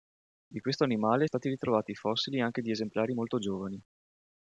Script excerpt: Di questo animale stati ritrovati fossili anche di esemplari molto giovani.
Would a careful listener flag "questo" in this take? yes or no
no